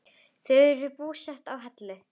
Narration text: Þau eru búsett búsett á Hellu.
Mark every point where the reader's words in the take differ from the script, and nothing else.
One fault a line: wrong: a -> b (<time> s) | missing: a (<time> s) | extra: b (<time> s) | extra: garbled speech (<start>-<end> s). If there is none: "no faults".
missing: búsett (1.5 s)